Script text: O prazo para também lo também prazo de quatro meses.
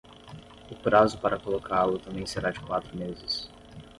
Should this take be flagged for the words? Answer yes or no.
yes